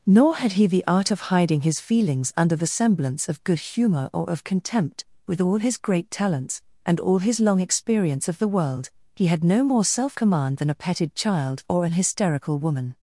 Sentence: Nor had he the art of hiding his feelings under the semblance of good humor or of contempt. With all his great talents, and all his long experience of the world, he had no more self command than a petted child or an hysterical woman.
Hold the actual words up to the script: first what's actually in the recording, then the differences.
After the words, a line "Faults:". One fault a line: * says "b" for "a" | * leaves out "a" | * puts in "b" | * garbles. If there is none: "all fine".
Nor had he the art of hiding his feelings under the semblance of good humor or of contempt. With all his great talents, and all his long experience of the world, he had no more self command than a petted child or an hysterical woman.
Faults:
all fine